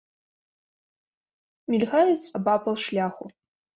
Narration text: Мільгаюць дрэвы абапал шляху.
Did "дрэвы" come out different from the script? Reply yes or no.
yes